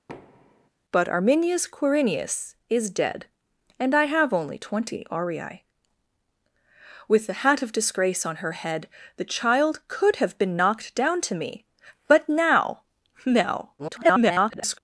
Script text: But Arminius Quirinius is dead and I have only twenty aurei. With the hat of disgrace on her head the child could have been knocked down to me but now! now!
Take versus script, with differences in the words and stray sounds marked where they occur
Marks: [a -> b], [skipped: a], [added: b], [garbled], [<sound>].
[thud] But Arminius Quirinius is dead and I have only twenty aurei. With the hat of disgrace on her head the child could have been knocked down to me but now! now! [garbled]